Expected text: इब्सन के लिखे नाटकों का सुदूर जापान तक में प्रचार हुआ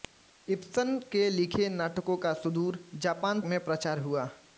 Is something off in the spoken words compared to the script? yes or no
yes